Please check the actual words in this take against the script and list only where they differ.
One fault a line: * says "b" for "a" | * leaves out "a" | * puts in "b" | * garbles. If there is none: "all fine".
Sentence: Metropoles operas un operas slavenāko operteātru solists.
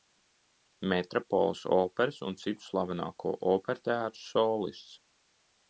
* says "citu" for "operas"